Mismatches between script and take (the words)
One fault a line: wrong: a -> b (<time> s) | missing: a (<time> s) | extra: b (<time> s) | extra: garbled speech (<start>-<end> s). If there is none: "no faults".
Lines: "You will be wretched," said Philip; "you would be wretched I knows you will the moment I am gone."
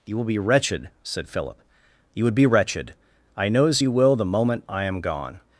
no faults